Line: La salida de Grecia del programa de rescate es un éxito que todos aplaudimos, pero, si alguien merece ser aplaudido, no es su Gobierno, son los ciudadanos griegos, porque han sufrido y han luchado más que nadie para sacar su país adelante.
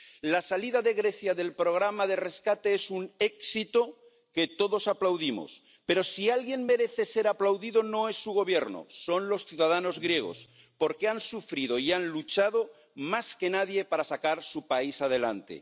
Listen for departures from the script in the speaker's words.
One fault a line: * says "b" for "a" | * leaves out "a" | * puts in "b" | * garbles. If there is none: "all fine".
all fine